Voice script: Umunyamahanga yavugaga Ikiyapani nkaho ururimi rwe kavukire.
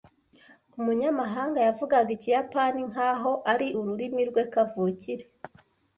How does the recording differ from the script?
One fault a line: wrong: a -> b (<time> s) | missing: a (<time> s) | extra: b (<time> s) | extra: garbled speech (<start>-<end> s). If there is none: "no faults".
extra: ari (3.5 s)